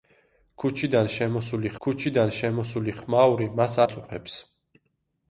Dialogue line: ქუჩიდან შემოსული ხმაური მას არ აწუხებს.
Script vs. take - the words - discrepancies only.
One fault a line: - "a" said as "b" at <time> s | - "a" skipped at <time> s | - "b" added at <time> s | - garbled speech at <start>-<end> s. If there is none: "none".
- "ქუჩიდან შემოსული" added at 1.9 s
- "არ" skipped at 3.8 s